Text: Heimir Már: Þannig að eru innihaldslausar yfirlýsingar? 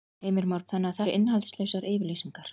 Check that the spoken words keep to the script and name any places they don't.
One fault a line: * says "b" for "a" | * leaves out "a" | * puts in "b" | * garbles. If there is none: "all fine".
all fine